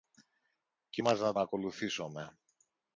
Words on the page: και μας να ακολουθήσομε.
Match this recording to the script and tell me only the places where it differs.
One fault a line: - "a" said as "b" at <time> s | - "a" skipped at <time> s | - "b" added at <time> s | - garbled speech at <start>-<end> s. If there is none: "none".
none